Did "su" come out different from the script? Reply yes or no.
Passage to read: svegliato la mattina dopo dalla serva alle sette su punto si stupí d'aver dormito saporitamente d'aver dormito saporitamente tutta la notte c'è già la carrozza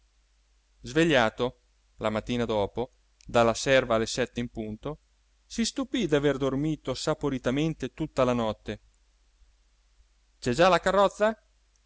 yes